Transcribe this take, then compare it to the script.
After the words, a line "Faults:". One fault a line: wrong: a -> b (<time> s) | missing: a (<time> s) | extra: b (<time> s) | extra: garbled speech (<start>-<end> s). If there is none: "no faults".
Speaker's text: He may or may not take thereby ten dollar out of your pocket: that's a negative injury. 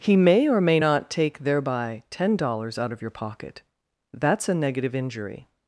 He may or may not take thereby ten dollars out of your pocket: that's a negative injury.
Faults:
wrong: dollar -> dollars (2.4 s)